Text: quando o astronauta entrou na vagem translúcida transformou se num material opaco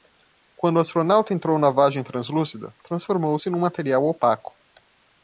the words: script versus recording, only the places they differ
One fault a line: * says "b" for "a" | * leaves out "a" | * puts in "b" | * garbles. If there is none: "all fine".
all fine